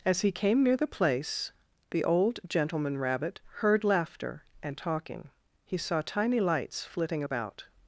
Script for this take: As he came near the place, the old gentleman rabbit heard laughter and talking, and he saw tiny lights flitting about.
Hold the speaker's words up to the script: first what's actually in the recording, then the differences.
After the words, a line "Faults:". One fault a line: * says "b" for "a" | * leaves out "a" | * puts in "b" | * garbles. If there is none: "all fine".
As he came near the place, the old gentleman rabbit heard laughter and talking, he saw tiny lights flitting about.
Faults:
* leaves out "and"